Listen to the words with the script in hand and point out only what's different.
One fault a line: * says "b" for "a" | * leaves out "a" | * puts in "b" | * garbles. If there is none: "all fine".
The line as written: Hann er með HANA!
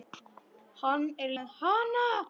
all fine